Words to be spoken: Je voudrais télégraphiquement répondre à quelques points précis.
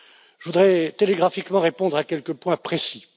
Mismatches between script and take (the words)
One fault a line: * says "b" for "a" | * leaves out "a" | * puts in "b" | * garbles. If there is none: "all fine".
all fine